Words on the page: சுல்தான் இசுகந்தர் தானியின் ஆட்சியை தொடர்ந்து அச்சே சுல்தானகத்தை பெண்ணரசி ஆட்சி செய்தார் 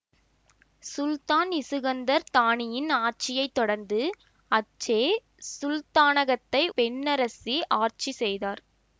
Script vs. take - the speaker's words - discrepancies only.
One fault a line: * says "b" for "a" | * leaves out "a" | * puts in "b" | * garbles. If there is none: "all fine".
all fine